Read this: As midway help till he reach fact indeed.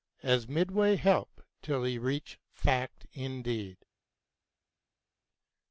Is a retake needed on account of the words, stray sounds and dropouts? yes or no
no